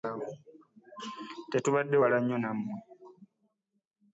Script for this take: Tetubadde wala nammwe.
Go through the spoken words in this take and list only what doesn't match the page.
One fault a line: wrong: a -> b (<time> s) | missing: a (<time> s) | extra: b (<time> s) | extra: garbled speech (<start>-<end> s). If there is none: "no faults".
extra: nnyo (2.2 s)